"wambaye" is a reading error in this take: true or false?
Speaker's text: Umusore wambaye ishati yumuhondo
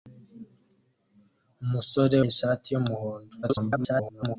true